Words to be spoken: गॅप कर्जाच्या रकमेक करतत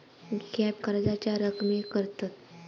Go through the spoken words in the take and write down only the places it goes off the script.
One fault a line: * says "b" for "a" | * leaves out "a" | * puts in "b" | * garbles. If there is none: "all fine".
all fine